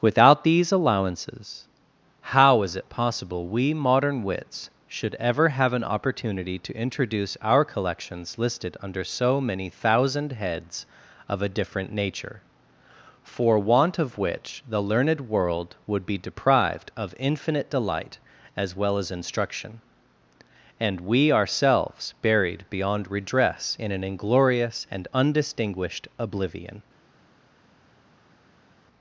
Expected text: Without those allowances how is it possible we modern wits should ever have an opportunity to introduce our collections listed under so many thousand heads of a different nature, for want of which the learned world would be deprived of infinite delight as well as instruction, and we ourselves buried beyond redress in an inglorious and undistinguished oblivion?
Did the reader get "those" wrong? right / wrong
wrong